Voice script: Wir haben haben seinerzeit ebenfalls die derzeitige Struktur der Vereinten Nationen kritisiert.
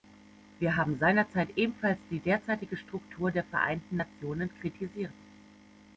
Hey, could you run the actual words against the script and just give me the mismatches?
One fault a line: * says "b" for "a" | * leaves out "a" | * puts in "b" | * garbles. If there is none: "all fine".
* leaves out "haben"